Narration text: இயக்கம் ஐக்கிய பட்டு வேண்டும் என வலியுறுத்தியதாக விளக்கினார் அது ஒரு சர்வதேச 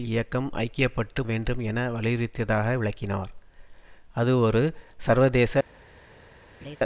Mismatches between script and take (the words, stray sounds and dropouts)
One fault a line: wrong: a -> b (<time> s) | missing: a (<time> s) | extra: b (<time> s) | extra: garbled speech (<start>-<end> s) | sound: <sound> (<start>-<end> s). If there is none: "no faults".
sound: laugh (6.6-6.8 s)